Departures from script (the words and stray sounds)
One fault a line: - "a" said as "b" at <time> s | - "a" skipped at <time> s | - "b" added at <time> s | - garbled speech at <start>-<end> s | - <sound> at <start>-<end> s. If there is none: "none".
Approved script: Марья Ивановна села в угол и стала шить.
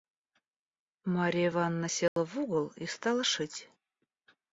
- dropout at 2.1-2.2 s